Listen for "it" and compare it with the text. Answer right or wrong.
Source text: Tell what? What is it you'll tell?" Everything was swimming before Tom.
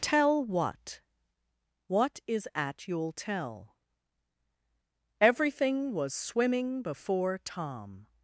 wrong